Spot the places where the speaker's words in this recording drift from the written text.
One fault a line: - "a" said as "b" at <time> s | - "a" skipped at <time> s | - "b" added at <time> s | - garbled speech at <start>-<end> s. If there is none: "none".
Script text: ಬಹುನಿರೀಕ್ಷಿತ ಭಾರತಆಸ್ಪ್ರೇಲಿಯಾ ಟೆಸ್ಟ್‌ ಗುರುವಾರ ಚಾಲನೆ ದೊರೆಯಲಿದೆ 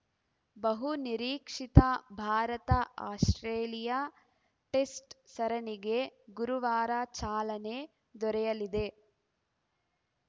- "ಸರಣಿಗೆ" added at 5.3 s